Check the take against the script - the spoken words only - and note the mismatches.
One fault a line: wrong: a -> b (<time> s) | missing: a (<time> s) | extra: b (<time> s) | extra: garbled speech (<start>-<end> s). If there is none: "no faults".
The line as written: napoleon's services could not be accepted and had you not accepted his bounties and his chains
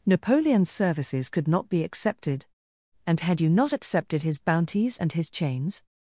no faults